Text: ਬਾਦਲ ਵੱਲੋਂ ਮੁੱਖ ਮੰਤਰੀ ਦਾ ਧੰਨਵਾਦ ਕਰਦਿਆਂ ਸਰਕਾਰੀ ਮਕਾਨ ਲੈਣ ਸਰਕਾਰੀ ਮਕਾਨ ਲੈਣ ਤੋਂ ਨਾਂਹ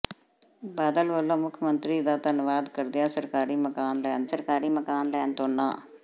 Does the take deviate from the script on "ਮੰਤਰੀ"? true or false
false